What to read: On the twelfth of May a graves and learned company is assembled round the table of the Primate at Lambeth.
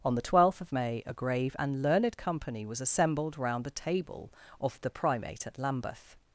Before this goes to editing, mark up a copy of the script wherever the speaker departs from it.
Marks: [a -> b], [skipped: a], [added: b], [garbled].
On the twelfth of May a [graves -> grave] and learned company [is -> was] assembled round the table of the Primate at Lambeth.